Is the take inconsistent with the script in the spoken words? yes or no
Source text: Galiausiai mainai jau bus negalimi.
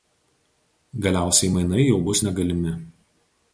no